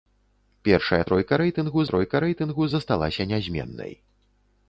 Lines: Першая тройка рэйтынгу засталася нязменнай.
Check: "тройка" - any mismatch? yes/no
no